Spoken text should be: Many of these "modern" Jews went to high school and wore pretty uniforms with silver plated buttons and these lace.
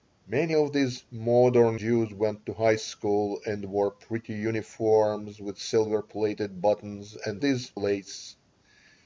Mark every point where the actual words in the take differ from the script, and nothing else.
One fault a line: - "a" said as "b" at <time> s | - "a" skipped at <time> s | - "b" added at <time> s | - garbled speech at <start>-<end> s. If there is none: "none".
none